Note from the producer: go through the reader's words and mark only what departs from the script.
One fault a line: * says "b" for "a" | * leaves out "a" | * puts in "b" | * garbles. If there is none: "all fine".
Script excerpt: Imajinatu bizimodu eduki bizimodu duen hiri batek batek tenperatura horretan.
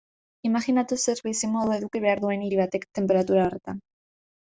* puts in "zer"
* says "behar" for "bizimodu"
* leaves out "batek"